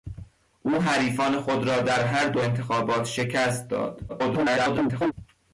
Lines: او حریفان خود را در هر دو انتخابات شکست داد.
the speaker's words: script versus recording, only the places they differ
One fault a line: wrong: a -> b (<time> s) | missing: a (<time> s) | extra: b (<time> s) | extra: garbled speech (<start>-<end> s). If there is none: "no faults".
extra: garbled speech (4.1-5.1 s)